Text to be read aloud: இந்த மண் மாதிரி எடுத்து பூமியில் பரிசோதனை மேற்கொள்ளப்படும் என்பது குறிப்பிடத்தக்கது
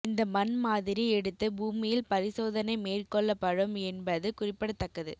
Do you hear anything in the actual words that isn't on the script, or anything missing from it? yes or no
no